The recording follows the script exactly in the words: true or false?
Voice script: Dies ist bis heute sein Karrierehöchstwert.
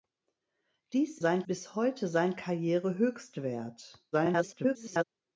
false